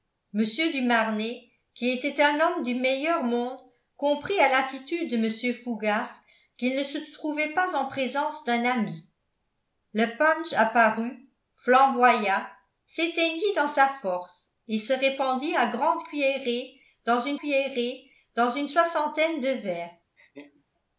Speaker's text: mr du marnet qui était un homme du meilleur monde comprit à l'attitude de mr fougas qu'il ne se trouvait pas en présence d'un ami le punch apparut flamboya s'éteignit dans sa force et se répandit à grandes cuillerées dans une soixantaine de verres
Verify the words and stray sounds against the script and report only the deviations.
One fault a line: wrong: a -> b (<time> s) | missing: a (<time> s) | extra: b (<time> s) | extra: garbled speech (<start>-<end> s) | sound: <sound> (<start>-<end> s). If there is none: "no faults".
extra: cuillerées dans une (17.4 s)
sound: laugh (20.2-20.7 s)